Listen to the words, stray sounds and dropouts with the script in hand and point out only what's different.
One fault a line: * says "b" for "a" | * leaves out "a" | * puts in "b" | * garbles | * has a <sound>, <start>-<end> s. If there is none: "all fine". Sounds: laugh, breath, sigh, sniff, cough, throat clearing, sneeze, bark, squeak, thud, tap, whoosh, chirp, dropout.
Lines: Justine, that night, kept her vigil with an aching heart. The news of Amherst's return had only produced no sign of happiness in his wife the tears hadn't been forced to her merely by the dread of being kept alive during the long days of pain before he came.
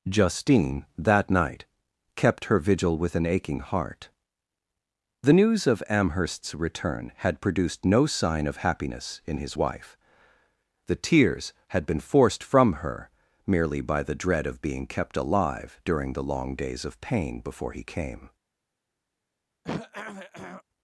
* leaves out "only"
* says "had" for "hadn't"
* says "from" for "to"
* has a throat clearing, 19.6-20.6 s